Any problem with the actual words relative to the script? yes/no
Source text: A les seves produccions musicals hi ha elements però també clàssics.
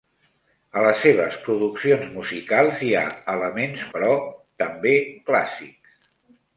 no